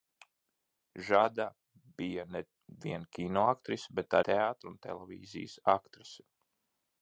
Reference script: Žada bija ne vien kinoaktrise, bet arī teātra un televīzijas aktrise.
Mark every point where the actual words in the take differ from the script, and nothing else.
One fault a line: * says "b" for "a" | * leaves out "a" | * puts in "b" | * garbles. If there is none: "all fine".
* leaves out "arī"